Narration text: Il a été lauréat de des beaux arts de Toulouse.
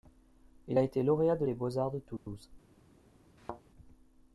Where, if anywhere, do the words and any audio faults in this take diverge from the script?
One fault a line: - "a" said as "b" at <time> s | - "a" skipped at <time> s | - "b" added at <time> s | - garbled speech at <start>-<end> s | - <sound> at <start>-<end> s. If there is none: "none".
- dropout at 2.2-2.3 s
- thud at 3.4-3.6 s